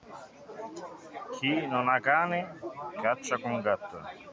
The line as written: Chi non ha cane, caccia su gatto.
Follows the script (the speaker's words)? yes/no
no